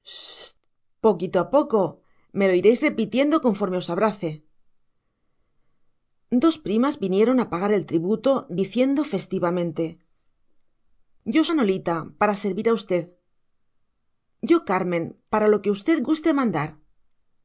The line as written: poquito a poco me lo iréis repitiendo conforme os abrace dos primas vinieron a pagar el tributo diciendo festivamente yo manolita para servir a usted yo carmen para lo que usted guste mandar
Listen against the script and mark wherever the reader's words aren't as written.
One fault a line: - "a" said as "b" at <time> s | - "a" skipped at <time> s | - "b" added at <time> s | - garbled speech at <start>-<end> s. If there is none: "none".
none